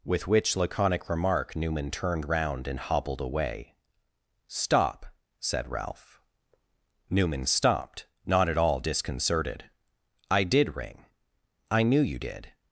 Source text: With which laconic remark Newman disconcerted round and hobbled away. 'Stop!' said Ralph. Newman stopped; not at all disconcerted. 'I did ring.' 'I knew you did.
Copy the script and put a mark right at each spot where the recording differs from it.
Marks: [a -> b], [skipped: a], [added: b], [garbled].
With which laconic remark Newman [disconcerted -> turned] round and hobbled away. 'Stop!' said Ralph. Newman stopped; not at all disconcerted. 'I did ring.' 'I knew you did.